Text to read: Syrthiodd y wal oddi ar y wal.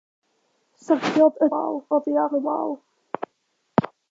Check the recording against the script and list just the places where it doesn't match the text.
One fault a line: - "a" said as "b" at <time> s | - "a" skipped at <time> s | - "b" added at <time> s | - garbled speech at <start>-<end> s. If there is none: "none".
none